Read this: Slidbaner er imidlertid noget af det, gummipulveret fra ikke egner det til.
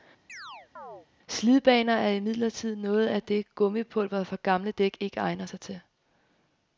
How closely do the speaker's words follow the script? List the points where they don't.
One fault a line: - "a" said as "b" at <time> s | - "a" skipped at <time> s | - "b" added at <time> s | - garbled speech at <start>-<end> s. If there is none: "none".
- "gamle dæk" added at 4.4 s
- "det" said as "sig" at 5.4 s